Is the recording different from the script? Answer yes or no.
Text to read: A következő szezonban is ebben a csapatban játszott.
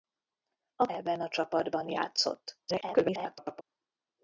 yes